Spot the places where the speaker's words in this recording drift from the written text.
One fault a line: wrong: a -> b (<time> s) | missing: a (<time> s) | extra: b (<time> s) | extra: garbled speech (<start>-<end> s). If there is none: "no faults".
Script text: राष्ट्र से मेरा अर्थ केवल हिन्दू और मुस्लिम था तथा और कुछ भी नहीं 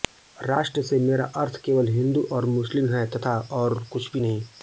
wrong: था -> है (2.9 s)